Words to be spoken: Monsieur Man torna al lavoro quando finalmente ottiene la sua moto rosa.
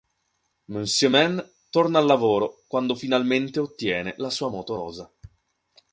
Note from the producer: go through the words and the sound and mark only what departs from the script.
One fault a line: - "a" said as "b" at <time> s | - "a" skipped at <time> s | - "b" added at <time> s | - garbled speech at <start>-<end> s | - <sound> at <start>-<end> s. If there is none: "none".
none